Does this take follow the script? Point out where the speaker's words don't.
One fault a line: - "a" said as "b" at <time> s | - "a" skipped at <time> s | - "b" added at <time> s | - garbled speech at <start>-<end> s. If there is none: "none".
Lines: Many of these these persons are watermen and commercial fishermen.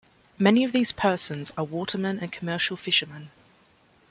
- "these" skipped at 0.9 s